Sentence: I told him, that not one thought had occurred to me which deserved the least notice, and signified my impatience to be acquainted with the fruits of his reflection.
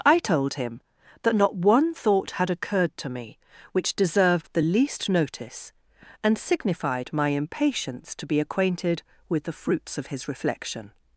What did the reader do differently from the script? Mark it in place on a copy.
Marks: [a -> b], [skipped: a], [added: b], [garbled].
I told him, that not one thought had occurred to me which deserved the least notice, and signified my impatience to be acquainted with the fruits of his reflection.